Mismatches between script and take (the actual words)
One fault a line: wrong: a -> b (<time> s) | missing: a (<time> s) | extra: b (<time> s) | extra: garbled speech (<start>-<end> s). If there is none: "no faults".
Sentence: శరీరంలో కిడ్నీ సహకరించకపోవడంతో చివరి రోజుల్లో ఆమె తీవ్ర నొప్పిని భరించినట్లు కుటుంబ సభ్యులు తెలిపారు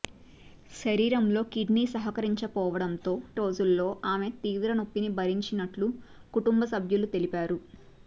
missing: చివరి (3.1 s)